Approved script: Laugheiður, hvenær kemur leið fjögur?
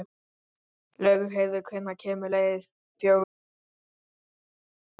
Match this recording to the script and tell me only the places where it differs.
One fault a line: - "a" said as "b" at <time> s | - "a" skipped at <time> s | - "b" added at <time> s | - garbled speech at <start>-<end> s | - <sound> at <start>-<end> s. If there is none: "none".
none